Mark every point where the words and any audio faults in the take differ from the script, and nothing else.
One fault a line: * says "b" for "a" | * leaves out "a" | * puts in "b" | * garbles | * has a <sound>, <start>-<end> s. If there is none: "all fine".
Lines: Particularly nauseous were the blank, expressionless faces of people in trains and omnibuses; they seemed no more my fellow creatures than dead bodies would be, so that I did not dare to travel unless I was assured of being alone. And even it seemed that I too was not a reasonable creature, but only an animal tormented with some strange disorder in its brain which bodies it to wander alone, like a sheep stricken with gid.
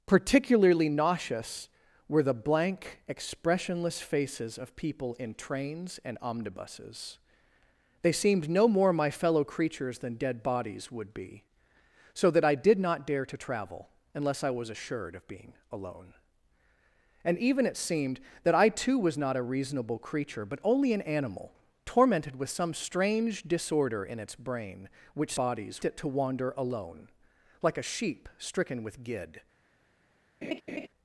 * has a laugh, 30.4-30.9 s